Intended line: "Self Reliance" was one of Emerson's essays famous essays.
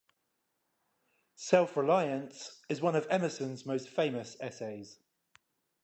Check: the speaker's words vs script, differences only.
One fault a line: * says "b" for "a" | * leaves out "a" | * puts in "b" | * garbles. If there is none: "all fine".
* says "is" for "was"
* says "most" for "essays"